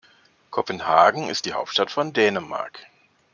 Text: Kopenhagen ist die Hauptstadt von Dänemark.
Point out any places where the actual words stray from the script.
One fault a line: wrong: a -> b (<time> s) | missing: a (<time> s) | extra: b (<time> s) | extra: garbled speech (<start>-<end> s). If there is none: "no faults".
no faults